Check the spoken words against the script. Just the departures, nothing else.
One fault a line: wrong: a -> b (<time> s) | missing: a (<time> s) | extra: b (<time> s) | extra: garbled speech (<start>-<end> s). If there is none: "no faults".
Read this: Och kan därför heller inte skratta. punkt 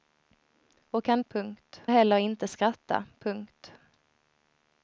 wrong: därför -> punkt (1.3 s)